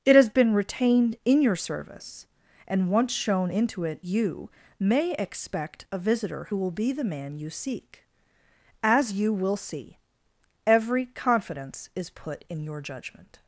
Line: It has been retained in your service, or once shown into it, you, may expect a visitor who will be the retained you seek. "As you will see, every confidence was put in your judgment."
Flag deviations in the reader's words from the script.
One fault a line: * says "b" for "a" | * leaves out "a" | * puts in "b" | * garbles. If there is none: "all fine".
* says "and" for "or"
* says "man" for "retained"
* says "is" for "was"